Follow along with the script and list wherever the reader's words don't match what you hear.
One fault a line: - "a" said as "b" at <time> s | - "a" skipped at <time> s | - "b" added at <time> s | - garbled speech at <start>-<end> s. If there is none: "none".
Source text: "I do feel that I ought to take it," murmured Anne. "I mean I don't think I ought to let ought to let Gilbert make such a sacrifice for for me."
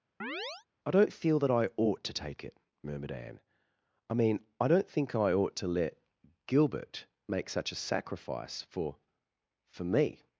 - "do" said as "don't" at 0.9 s
- "ought to let" skipped at 6.0 s